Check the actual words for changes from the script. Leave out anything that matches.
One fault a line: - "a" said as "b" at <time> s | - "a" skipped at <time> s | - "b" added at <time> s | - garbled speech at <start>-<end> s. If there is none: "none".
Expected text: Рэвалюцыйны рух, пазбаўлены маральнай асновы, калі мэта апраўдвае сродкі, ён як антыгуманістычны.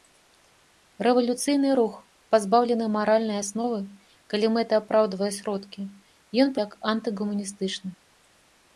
none